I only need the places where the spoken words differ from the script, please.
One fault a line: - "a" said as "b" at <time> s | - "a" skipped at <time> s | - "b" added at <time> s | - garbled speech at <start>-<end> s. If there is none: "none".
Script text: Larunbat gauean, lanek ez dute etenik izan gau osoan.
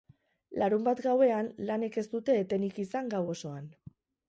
none